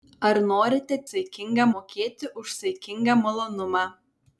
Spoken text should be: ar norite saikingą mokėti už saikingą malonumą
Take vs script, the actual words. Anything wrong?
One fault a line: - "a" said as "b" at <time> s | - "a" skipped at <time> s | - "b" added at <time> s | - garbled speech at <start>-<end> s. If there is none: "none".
none